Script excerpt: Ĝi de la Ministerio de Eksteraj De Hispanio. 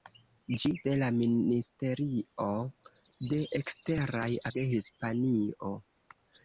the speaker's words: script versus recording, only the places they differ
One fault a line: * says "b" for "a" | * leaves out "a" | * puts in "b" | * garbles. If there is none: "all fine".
all fine